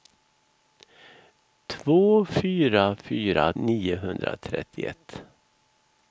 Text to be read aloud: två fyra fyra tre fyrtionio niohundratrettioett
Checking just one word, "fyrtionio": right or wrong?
wrong